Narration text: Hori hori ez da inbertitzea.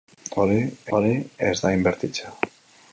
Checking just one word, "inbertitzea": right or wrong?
right